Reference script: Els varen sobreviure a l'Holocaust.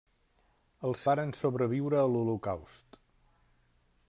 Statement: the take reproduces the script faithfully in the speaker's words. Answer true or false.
true